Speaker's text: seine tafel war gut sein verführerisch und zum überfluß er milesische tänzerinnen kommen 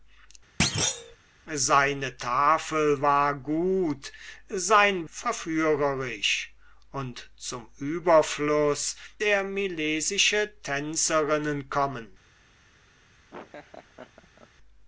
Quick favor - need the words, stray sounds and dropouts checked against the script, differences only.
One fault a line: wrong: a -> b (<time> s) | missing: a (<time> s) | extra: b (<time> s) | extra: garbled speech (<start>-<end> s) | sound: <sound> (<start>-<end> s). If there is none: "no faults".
sound: thud (0.6-1.2 s)
sound: laugh (13.3-14.5 s)